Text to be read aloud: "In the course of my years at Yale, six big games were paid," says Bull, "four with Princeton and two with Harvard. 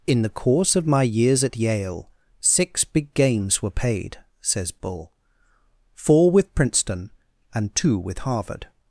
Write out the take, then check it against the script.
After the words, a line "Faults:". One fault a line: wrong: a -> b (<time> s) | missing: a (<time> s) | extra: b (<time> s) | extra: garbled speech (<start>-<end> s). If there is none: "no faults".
"In the course of my years at Yale, six big games were paid," says Bull, "four with Princeton and two with Harvard.
Faults:
no faults